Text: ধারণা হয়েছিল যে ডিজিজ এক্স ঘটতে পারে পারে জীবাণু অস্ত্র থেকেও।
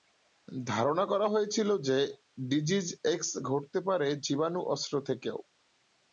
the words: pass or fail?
fail